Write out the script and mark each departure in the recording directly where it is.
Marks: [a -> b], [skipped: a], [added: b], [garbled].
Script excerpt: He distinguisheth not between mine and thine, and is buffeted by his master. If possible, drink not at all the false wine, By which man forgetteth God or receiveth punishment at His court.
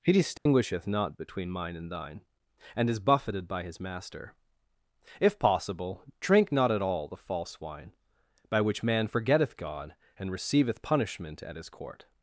He distinguisheth not between mine and thine, and is buffeted by his master. If possible, drink not at all the false wine, By which man forgetteth God [or -> and] receiveth punishment at His court.